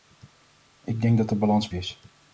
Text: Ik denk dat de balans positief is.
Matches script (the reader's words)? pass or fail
fail